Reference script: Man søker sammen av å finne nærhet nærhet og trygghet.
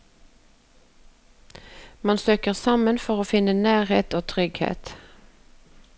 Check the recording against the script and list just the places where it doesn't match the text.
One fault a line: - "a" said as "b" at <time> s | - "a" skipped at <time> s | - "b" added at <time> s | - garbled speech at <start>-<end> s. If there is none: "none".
- "av" said as "for" at 3.0 s
- "nærhet" skipped at 4.2 s